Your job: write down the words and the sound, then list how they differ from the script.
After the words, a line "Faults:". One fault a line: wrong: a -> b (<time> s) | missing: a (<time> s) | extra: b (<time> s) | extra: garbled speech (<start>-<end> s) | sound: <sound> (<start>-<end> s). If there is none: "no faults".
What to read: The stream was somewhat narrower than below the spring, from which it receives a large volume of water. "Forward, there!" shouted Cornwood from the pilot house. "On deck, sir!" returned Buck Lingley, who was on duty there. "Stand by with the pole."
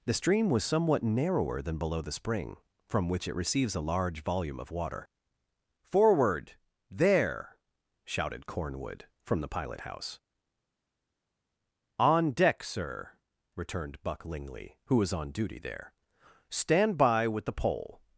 The stream was somewhat narrower than below the spring, from which it receives a large volume of water. "Forward, there!" shouted Cornwood from the pilot house. "On deck, sir!" returned Buck Lingley, who was on duty there. "Stand by with the pole."
Faults:
no faults